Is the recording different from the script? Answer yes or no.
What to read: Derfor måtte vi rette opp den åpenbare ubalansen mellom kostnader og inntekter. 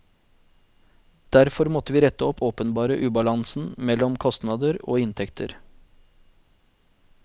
yes